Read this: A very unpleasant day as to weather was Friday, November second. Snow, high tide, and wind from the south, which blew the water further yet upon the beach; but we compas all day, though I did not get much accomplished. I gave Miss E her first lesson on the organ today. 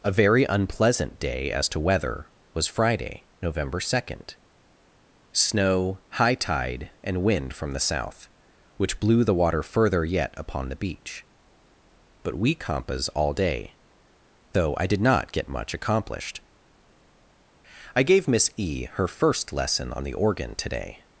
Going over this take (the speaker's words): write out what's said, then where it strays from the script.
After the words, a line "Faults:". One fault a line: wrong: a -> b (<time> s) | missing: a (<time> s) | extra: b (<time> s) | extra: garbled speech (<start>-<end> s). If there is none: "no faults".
A very unpleasant day as to weather was Friday, November second. Snow, high tide, and wind from the south, which blew the water further yet upon the beach; but we compas all day, though I did not get much accomplished. I gave Miss E her first lesson on the organ today.
Faults:
no faults